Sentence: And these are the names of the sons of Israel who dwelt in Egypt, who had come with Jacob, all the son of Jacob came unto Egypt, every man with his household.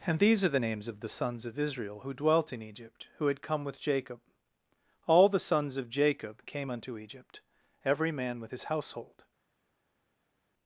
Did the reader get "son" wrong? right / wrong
wrong